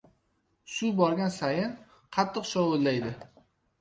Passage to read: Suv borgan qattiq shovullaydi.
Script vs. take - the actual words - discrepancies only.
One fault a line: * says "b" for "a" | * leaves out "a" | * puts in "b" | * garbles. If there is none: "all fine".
* puts in "sayin"